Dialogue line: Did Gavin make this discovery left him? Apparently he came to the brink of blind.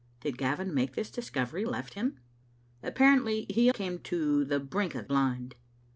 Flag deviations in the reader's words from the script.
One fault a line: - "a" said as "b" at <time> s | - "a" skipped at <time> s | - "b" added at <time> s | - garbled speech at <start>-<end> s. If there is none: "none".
none